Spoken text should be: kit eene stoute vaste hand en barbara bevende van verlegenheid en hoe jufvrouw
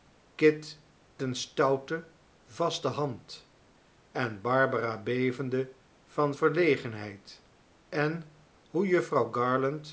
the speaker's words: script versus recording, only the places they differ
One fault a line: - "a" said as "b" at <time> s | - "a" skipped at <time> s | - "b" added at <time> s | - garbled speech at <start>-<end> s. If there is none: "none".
none